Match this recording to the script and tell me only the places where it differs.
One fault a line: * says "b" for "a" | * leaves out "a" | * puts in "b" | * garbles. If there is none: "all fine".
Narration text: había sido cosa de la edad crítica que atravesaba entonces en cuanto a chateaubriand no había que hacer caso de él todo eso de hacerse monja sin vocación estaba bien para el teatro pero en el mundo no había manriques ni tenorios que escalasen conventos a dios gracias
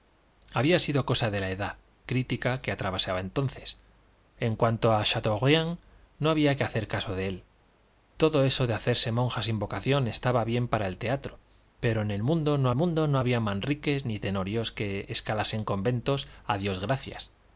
* puts in "mundo no"